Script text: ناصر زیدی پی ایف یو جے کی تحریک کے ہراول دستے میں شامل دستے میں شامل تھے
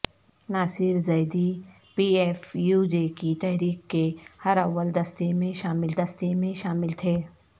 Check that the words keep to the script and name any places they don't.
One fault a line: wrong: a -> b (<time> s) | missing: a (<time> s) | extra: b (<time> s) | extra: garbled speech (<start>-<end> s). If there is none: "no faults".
no faults